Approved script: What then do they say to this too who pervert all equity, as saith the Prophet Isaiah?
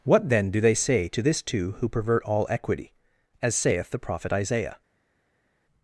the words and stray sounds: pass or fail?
pass